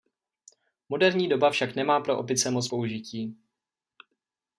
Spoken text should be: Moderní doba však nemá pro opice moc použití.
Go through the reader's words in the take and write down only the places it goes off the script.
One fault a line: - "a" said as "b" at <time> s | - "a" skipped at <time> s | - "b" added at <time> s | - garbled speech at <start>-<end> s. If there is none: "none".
none